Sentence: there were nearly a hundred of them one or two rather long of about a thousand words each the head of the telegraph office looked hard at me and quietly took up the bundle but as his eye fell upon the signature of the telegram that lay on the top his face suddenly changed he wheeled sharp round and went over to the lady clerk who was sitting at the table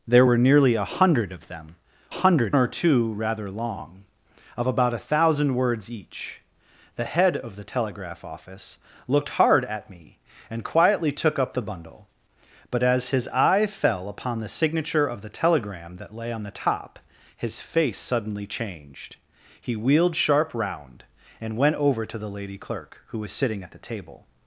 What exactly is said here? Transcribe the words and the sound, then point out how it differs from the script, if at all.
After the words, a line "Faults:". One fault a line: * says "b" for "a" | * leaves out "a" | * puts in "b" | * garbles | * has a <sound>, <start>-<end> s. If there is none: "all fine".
there were nearly a hundred of them hundred or two rather long of about a thousand words each the head of the telegraph office looked hard at me and quietly took up the bundle but as his eye fell upon the signature of the telegram that lay on the top his face suddenly changed he wheeled sharp round and went over to the lady clerk who was sitting at the table
Faults:
* says "hundred" for "one"